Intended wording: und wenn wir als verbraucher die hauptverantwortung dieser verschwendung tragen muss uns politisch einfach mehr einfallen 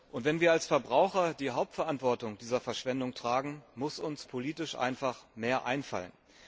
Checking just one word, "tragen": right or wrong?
right